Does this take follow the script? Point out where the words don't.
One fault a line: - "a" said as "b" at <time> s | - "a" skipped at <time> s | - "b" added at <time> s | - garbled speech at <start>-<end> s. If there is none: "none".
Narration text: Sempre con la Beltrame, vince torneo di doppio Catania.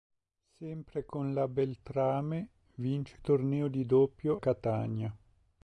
none